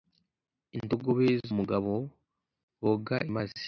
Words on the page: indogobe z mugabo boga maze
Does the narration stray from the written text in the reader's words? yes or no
no